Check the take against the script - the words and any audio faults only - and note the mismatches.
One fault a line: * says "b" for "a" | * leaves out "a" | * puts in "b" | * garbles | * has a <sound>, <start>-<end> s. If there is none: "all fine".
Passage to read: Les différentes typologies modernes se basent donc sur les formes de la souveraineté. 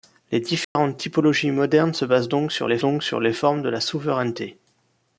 * has a dropout, 0.6-0.8 s
* puts in "donc sur les"